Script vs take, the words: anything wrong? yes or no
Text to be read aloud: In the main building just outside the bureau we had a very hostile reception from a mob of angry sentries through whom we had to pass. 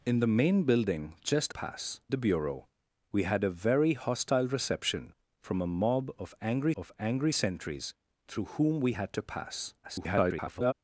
yes